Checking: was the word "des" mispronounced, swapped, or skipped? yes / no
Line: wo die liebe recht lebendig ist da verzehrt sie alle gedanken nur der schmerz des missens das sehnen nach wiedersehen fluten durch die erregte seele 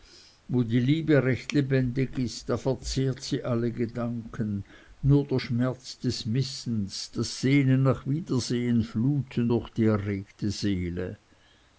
no